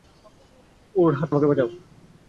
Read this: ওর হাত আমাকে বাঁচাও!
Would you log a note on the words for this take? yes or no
no